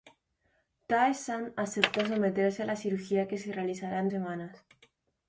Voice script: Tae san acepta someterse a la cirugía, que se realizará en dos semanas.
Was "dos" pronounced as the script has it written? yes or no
no